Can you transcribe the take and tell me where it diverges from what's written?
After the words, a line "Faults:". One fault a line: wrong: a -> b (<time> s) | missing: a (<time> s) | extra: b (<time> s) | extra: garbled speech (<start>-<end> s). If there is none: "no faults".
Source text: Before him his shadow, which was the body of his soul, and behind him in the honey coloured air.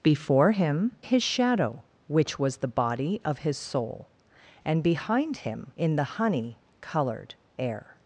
Before him his shadow, which was the body of his soul, and behind him in the honey coloured air.
Faults:
no faults